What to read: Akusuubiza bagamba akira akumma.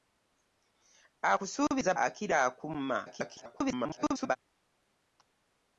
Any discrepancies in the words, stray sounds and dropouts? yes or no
yes